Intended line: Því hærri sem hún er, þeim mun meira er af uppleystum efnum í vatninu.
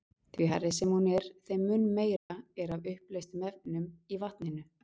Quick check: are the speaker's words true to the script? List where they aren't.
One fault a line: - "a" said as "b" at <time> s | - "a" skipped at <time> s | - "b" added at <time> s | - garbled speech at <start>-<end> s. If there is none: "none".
none